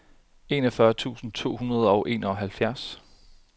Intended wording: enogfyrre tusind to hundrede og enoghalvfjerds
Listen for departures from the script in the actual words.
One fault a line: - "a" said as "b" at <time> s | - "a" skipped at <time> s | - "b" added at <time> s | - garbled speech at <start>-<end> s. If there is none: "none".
none